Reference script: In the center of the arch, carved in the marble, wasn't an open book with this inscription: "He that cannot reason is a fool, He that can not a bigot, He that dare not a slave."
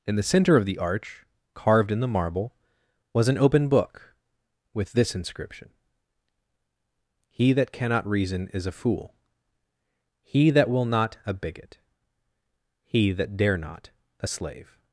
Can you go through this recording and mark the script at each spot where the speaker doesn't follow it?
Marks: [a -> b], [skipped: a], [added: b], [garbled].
In the center of the arch, carved in the marble, [wasn't -> was] an open book with this inscription: "He that cannot reason is a fool, He that [can -> will] not a bigot, He that dare not a slave."